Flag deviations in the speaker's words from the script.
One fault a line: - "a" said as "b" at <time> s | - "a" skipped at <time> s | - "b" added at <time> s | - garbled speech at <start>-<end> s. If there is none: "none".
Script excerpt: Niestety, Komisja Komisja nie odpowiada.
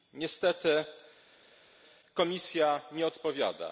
- "Komisja" skipped at 2.8 s